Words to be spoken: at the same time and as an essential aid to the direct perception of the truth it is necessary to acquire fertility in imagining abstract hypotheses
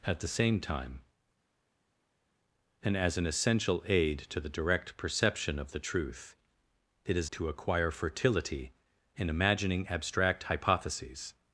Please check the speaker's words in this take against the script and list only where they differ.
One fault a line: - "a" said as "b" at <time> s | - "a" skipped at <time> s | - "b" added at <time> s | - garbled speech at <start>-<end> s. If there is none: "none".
- "necessary" skipped at 7.3 s